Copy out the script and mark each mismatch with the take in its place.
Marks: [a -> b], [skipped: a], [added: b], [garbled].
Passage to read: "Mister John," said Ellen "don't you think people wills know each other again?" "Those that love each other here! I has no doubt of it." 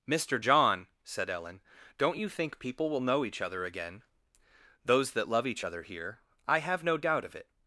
"Mister John," said Ellen "don't you think people [wills -> will] know each other again?" "Those that love each other here! I [has -> have] no doubt of it."